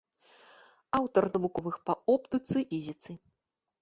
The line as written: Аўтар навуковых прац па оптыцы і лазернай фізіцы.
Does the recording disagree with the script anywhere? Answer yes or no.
yes